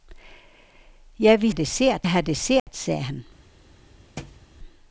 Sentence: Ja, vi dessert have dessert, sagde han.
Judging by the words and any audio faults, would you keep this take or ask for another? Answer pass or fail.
fail